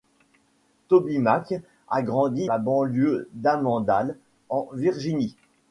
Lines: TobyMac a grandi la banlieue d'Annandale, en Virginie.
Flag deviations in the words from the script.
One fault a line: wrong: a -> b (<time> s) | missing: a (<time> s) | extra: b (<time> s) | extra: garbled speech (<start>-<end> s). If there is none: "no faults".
no faults